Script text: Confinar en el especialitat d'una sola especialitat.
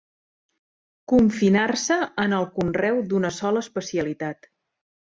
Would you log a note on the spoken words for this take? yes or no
yes